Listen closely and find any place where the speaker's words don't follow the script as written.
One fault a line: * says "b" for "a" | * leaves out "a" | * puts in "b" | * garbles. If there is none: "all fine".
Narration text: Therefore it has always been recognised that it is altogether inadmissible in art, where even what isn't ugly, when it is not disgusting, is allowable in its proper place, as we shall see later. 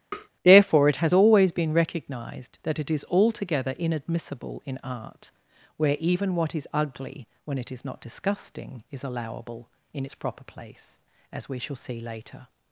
* says "is" for "isn't"